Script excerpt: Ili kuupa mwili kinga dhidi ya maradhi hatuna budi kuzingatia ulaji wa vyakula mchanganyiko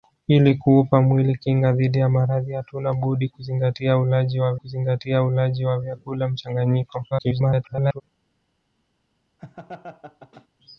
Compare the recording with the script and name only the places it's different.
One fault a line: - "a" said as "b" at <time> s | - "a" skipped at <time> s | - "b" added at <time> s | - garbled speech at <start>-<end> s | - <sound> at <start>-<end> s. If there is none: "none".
- "kuzingatia ulaji wa" added at 4.5 s
- garbled speech at 7.1-8.0 s
- laugh at 9.4-10.5 s